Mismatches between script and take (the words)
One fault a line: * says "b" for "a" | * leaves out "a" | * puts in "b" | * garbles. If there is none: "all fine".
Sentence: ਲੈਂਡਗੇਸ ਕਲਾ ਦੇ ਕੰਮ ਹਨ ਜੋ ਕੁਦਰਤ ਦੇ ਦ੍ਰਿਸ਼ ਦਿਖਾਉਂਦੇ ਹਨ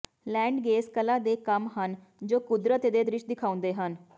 all fine